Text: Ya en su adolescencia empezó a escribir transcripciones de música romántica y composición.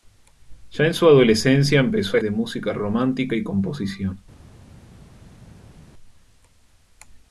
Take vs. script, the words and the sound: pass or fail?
fail